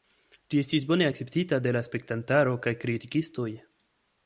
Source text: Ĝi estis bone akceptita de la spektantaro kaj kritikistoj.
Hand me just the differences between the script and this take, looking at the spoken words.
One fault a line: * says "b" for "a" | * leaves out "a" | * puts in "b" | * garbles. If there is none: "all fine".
all fine